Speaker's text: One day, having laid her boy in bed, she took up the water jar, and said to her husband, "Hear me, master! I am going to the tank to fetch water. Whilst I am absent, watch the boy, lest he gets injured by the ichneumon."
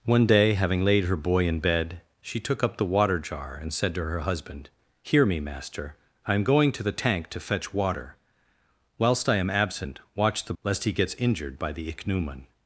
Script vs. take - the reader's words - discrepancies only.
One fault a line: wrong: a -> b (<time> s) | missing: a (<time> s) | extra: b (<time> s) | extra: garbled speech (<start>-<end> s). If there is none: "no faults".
missing: boy (10.5 s)